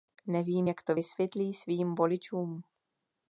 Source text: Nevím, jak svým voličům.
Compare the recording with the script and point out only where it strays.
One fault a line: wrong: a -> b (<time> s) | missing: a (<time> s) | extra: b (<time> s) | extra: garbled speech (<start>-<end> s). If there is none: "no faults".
extra: to vysvětlí (0.8 s)